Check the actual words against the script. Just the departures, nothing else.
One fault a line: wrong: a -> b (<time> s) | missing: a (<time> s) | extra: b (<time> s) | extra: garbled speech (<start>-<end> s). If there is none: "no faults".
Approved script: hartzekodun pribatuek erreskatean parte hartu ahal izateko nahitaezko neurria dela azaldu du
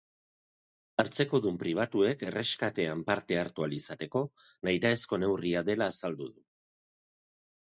no faults